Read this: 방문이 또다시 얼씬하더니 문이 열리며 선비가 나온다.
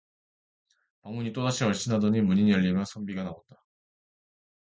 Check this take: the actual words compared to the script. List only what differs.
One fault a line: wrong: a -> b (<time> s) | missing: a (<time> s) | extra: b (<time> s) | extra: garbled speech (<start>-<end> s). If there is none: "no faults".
no faults